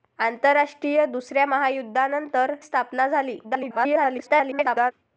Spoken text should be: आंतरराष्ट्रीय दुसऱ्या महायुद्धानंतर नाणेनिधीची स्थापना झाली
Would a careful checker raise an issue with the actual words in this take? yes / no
yes